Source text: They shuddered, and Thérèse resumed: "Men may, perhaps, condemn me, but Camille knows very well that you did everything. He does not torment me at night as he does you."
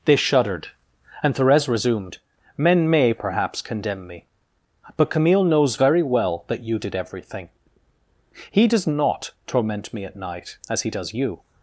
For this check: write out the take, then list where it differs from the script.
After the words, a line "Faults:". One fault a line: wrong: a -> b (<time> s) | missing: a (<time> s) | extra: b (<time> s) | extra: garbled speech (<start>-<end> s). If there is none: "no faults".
They shuddered, and Thérèse resumed: "Men may, perhaps, condemn me, but Camille knows very well that you did everything. He does not torment me at night as he does you."
Faults:
no faults